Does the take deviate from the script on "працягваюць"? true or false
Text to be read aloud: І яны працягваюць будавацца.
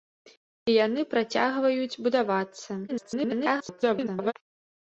false